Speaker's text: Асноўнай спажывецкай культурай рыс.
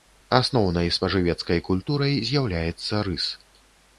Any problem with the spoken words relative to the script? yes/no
yes